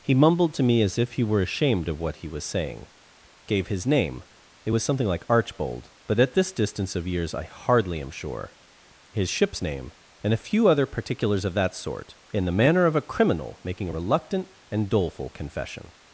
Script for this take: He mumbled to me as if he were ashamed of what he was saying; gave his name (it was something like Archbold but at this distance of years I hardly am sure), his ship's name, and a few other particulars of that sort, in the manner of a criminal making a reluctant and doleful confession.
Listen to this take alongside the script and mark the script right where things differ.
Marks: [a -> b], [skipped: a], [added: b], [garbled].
He mumbled to me as if he were ashamed of what he was saying; gave his name (it was something like Archbold but at this distance of years I hardly am sure), his ship's name, and a few other particulars of that sort, in the manner of a criminal making a reluctant and doleful confession.